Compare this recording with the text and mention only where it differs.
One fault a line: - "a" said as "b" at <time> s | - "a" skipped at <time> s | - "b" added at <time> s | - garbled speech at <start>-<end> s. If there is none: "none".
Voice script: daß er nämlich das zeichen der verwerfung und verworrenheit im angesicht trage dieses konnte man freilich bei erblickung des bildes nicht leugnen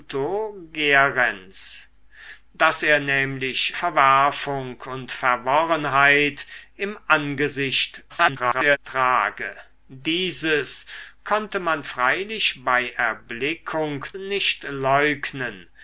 - "das zeichen der" skipped at 3.8 s
- garbled speech at 8.1-8.8 s
- "des bildes" skipped at 14.0 s